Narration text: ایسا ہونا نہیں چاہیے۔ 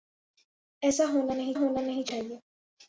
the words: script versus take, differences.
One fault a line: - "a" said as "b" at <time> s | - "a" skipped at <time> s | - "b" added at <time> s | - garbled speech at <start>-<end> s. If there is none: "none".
- "ہونا نہیں" added at 1.6 s